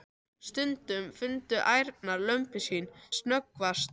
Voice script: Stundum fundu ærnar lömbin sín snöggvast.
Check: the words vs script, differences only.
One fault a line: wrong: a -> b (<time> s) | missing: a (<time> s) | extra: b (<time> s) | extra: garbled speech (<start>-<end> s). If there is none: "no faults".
no faults